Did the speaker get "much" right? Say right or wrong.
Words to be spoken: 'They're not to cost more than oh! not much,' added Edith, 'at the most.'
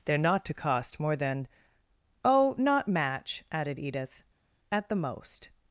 wrong